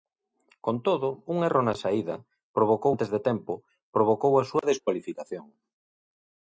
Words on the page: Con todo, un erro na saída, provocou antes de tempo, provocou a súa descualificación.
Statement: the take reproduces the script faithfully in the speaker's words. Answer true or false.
true